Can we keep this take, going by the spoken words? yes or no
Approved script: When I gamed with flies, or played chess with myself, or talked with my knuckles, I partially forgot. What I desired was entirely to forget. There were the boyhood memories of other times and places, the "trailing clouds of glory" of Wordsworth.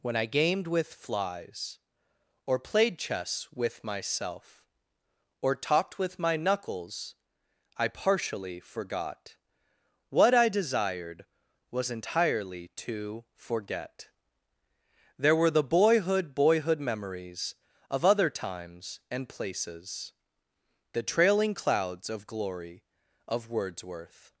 no